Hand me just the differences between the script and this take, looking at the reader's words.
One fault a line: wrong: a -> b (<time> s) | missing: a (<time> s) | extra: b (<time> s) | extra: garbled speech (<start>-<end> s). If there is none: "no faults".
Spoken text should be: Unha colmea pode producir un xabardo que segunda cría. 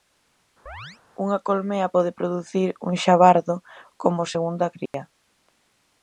wrong: que -> como (4.0 s)